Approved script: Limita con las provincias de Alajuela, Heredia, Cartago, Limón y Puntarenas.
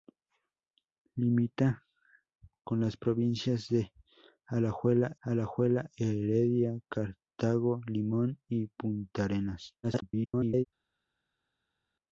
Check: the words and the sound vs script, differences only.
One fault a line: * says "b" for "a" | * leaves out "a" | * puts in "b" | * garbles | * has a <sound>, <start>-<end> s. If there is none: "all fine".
* puts in "Alajuela"
* garbles